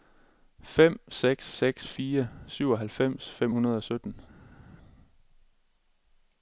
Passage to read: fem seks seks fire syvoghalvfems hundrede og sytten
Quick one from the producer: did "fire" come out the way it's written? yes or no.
yes